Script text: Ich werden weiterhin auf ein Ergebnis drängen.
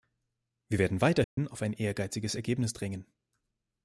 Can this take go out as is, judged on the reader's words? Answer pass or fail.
fail